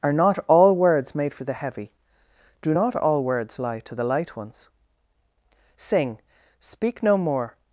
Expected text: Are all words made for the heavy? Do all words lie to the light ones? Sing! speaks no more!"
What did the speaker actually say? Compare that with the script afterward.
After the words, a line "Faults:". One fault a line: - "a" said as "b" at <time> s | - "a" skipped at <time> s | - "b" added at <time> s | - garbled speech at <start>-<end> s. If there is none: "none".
Are not all words made for the heavy? Do not all words lie to the light ones? Sing! speak no more!"
Faults:
- "not" added at 0.1 s
- "not" added at 2.7 s
- "speaks" said as "speak" at 6.6 s